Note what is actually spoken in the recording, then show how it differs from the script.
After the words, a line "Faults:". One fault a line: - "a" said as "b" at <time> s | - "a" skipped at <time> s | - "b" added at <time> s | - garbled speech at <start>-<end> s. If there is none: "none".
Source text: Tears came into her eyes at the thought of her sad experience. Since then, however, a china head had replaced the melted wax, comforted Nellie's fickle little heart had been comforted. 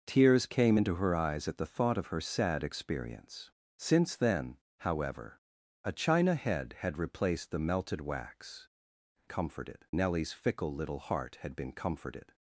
Tears came into her eyes at the thought of her sad experience. Since then, however, a china head had replaced the melted wax, comforted Nellie's fickle little heart had been comforted.
Faults:
none